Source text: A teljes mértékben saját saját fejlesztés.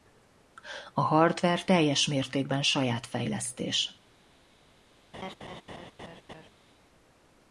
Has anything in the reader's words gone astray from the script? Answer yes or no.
yes